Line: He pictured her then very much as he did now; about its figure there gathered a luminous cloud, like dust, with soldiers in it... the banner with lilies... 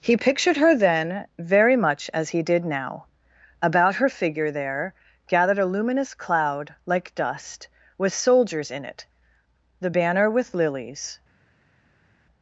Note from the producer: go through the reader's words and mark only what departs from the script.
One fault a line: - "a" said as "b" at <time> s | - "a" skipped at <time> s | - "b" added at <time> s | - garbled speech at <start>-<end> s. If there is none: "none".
- "its" said as "her" at 4.0 s